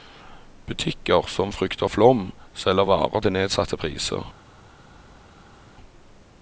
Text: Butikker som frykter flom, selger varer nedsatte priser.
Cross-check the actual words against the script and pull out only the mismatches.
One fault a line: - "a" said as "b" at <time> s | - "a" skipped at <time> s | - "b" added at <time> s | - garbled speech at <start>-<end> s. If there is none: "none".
- "til" added at 3.2 s